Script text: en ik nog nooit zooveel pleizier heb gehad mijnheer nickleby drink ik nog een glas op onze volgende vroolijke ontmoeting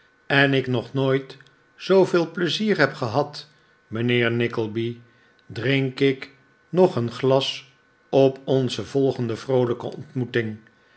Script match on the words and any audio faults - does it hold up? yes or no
yes